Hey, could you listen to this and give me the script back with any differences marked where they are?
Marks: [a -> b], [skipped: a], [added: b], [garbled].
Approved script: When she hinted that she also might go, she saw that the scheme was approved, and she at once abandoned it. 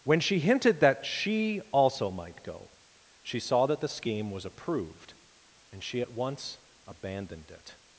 When she hinted that she also might go, she saw that the scheme was approved, and she at once abandoned it.